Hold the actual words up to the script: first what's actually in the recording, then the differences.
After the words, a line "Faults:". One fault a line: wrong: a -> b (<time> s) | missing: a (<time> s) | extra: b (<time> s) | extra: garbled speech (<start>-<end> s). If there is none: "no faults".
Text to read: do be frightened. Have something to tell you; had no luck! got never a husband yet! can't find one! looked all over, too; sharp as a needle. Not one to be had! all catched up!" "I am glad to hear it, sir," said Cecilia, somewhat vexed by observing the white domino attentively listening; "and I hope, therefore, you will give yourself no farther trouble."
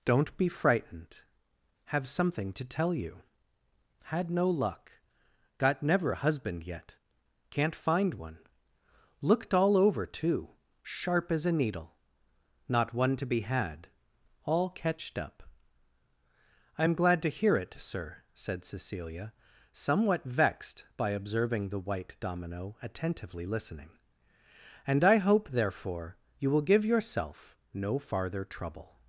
don't be frightened. Have something to tell you; had no luck! got never a husband yet! can't find one! looked all over, too; sharp as a needle. Not one to be had! all catched up!" "I am glad to hear it, sir," said Cecilia, somewhat vexed by observing the white domino attentively listening; "and I hope, therefore, you will give yourself no farther trouble."
Faults:
wrong: do -> don't (0.0 s)